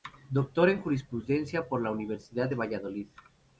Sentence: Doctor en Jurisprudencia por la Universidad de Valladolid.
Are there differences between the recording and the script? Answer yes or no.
no